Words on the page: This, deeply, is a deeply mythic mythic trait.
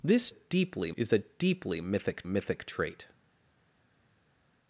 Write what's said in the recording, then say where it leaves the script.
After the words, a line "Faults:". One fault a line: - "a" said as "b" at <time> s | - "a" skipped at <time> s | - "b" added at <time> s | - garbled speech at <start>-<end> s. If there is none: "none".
This, deeply, is a deeply mythic mythic trait.
Faults:
none